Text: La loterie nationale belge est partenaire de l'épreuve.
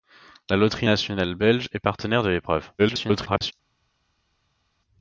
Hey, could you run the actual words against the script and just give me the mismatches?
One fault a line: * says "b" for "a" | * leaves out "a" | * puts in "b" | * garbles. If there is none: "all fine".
* garbles